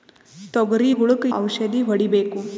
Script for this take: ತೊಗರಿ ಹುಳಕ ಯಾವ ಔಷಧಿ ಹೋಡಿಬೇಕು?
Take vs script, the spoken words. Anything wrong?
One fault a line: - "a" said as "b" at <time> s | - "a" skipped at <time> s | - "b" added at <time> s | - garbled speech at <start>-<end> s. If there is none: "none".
- "ಯಾವ" skipped at 1.2 s